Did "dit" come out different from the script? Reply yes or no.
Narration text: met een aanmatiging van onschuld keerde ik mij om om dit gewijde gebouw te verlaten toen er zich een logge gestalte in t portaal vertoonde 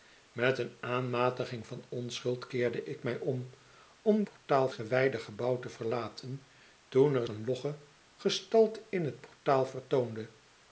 yes